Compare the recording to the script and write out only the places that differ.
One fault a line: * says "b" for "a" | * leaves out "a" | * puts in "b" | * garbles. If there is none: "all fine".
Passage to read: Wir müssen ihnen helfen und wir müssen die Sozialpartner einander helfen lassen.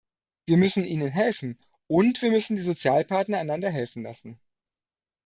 all fine